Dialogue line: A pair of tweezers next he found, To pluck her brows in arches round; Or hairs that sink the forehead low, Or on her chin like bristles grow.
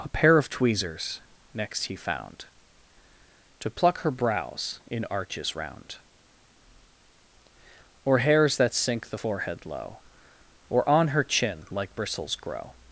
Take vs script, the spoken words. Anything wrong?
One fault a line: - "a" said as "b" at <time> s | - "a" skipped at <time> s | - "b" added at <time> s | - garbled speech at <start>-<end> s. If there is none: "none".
none